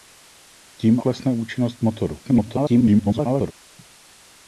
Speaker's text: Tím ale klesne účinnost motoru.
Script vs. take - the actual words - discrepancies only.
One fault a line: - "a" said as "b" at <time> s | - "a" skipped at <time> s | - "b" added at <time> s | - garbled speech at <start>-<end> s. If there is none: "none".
- "ale" skipped at 1.0 s
- garbled speech at 2.2-3.5 s